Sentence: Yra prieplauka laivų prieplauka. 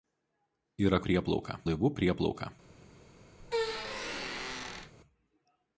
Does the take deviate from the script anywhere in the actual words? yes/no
no